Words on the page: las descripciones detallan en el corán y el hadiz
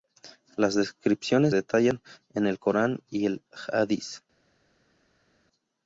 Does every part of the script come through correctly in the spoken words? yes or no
yes